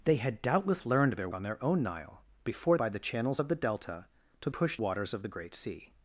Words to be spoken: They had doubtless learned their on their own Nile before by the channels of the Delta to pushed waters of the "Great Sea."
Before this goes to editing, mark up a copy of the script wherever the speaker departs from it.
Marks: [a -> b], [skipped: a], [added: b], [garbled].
They had doubtless learned their on their own Nile before by the channels of the Delta to pushed waters of the "Great Sea."